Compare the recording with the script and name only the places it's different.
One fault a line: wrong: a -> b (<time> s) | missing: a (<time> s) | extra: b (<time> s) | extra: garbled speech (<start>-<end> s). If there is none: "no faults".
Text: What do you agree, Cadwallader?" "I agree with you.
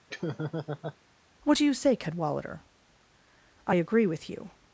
wrong: agree -> say (1.7 s)